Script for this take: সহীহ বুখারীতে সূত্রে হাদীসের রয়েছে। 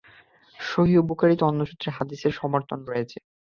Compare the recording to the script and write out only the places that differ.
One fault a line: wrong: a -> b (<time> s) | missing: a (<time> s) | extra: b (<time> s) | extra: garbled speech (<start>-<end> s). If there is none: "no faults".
extra: অন্য (1.4 s)
extra: সমর্থন (2.4 s)